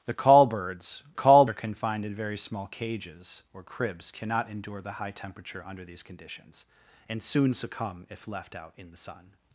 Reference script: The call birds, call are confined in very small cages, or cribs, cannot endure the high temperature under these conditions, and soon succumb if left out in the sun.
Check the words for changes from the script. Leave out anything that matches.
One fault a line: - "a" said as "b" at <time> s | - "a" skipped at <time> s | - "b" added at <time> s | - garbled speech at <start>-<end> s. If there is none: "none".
none